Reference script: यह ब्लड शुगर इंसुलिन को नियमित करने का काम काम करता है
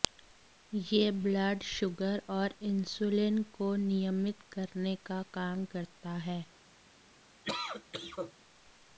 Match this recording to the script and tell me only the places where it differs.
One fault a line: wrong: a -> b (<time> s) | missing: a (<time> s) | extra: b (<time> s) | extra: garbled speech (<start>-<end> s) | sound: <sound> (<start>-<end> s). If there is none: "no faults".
extra: और (2.3 s)
missing: काम (5.7 s)
sound: cough (7.4-8.3 s)